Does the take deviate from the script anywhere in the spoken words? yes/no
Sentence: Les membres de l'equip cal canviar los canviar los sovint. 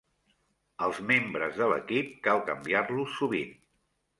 yes